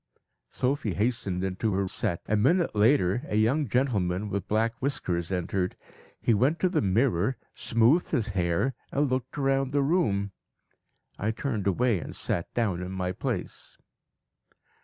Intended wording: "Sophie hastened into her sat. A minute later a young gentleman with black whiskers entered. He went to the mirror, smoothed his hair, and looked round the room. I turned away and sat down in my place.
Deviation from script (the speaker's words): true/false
false